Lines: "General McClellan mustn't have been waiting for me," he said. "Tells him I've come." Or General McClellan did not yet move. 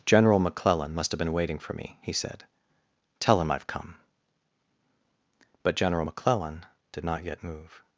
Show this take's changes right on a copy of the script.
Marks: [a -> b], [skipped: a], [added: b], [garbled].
"General McClellan [mustn't -> must] have been waiting for me," he said. ["Tells -> Tell] him I've come." [Or -> But] General McClellan did not yet move.